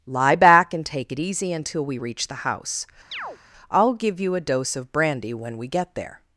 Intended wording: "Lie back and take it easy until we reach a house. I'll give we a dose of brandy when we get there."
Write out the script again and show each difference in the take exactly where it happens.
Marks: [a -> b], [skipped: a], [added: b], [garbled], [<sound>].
"Lie back and take it easy until we reach [a -> the] house. [chirp] I'll give [we -> you] a dose of brandy when we get there."